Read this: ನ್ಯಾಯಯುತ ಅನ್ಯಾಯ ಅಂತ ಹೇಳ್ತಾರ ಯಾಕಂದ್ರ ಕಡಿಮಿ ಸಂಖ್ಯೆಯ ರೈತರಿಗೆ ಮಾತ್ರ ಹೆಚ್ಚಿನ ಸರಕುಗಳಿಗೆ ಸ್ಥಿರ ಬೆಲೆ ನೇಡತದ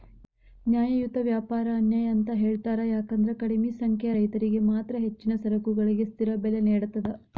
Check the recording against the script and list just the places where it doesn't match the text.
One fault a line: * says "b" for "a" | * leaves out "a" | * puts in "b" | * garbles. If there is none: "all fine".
* puts in "ವ್ಯಾಪಾರ"